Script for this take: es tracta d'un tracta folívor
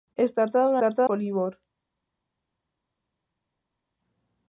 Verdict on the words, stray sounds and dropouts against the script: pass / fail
pass